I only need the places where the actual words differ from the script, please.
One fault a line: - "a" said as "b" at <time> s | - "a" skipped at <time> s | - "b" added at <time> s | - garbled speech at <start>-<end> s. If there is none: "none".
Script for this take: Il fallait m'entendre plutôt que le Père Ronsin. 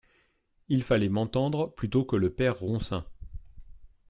none